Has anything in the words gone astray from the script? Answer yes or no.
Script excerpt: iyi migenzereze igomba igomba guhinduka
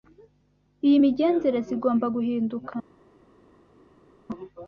yes